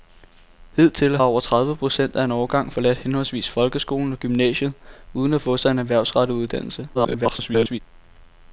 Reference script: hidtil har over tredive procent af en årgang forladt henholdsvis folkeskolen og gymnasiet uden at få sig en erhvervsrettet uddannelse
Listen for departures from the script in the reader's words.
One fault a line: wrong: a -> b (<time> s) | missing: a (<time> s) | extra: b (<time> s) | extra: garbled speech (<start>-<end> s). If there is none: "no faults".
missing: har (1.2 s)
extra: garbled speech (6.9-7.8 s)